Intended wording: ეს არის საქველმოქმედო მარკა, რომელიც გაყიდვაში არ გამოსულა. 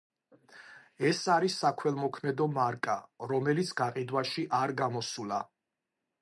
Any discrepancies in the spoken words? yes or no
no